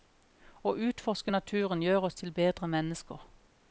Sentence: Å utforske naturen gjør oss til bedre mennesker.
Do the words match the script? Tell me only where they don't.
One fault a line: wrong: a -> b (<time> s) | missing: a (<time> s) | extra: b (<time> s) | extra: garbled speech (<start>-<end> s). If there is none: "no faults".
no faults